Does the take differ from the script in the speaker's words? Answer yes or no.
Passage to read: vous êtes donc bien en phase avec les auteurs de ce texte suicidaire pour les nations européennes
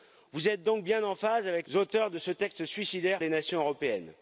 yes